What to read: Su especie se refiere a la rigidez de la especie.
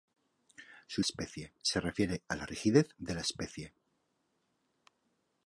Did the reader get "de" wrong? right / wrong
right